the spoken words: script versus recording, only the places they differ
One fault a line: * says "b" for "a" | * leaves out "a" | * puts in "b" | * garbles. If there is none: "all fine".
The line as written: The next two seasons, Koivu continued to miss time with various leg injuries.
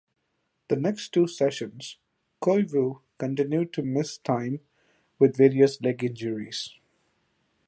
all fine